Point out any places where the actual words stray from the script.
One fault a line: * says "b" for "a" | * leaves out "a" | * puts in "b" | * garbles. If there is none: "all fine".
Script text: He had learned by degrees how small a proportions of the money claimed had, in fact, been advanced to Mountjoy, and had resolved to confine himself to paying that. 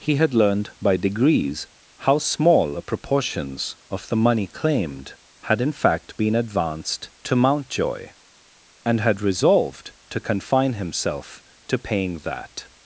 all fine